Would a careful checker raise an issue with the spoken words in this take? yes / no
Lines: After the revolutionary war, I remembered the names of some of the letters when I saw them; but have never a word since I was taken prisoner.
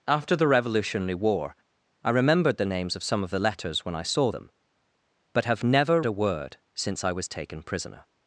no